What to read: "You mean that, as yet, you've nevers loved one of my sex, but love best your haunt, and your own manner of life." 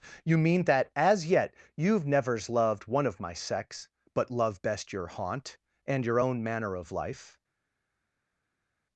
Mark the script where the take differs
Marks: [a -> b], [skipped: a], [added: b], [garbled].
"You mean that, as yet, you've nevers loved one of my sex, but love best your haunt, and your own manner of life."